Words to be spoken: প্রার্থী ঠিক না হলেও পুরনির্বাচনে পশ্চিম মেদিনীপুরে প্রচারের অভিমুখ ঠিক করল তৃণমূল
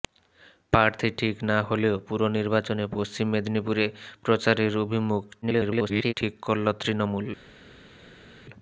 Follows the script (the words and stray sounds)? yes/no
no